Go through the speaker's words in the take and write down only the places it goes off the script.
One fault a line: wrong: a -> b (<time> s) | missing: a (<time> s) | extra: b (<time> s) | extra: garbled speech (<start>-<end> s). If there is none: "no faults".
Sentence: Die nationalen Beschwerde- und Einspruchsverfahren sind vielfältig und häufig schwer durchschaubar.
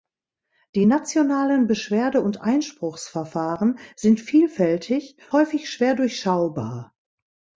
missing: und (5.2 s)